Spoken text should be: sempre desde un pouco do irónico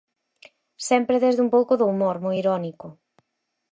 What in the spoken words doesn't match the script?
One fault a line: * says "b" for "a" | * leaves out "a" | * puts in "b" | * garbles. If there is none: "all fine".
* puts in "humor moi"